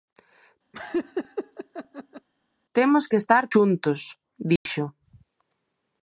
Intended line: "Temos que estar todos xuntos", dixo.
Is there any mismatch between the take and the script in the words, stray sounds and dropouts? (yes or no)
yes